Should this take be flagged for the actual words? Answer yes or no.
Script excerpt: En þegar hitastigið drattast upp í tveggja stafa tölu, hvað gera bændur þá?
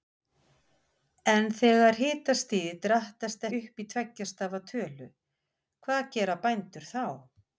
no